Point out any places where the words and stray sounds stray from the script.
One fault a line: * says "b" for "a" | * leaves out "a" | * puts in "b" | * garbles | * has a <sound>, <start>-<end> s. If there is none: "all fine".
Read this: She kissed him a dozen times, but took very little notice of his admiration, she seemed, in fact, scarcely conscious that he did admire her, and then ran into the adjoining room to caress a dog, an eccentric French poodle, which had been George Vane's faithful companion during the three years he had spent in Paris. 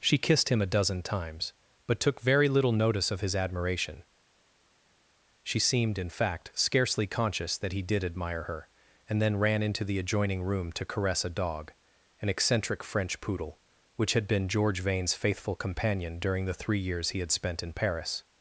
all fine